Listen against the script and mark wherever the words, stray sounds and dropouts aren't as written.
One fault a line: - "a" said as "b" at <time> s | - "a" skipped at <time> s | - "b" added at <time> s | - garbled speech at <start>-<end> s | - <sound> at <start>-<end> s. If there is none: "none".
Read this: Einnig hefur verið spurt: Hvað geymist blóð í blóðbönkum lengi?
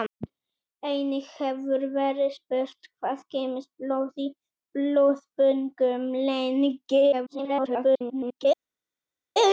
- garbled speech at 7.1-8.5 s